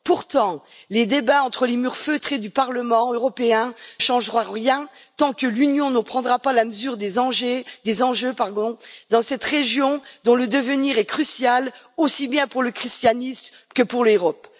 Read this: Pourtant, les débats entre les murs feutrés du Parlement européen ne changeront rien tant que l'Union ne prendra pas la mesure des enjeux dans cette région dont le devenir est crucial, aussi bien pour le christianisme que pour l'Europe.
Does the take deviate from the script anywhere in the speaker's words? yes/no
yes